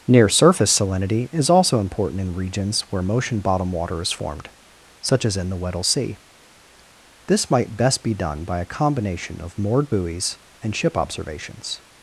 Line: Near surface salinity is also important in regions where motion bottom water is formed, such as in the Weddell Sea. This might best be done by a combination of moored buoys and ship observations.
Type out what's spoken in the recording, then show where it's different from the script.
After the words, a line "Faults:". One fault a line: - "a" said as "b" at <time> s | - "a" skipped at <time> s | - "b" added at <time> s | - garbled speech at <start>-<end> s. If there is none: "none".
Near surface salinity is also important in regions where motion bottom water is formed, such as in the Weddell Sea. This might best be done by a combination of moored buoys and ship observations.
Faults:
none